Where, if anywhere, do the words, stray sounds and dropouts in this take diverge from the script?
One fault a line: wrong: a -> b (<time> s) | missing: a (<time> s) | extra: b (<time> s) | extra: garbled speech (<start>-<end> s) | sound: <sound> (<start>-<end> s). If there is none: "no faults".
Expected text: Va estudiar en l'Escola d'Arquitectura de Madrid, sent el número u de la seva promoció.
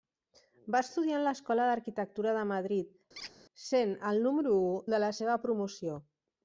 sound: squeak (3.2-3.3 s)